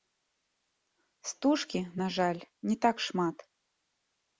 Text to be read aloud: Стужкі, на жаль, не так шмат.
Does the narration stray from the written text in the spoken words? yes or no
no